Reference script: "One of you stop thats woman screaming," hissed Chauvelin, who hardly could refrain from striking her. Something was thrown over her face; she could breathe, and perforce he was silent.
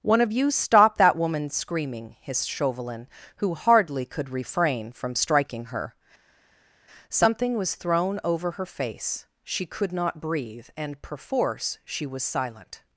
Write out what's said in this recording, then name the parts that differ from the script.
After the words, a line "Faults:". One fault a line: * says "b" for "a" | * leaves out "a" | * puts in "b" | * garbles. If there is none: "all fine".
"One of you stop that woman screaming," hissed Chauvelin, who hardly could refrain from striking her. Something was thrown over her face; she could not breathe, and perforce she was silent.
Faults:
* says "that" for "thats"
* puts in "not"
* says "she" for "he"